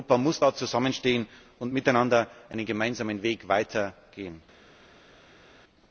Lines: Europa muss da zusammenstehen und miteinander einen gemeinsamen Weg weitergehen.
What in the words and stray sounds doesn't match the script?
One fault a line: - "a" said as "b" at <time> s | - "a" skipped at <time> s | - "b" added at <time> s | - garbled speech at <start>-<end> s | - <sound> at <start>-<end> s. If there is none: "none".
none